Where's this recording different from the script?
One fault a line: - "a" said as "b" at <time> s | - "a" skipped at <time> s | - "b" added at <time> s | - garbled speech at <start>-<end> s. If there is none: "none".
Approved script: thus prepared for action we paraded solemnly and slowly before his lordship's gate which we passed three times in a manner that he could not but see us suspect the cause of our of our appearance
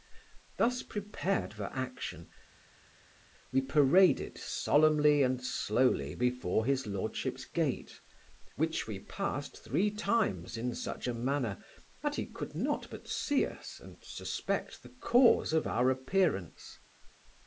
- "such" added at 10.7 s
- "and" added at 13.8 s
- "of our" skipped at 15.9 s